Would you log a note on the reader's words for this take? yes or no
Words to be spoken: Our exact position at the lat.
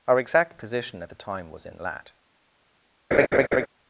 yes